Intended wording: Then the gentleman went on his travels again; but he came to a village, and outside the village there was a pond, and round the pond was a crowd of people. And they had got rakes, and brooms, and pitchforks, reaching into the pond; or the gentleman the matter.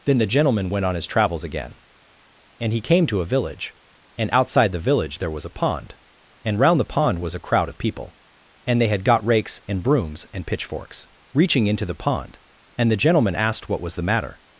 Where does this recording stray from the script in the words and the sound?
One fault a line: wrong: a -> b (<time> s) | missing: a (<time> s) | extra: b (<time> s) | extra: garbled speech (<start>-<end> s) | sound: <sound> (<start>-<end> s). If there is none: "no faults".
wrong: but -> and (2.6 s)
wrong: or -> and (12.8 s)
extra: asked what was (13.4 s)